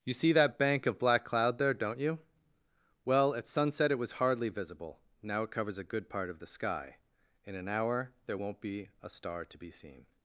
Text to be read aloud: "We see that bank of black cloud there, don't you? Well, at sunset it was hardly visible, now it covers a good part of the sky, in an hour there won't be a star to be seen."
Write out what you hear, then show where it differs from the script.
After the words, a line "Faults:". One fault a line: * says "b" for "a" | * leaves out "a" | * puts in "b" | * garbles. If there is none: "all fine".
"You see that bank of black cloud there, don't you? Well, at sunset it was hardly visible, now it covers a good part of the sky, in an hour there won't be a star to be seen."
Faults:
* says "You" for "We"